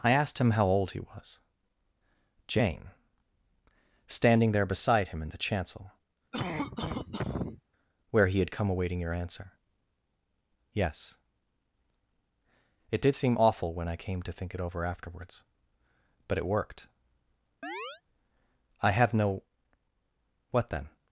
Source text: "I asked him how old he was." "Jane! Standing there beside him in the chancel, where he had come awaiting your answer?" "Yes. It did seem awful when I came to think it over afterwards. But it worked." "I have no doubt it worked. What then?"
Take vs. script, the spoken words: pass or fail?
fail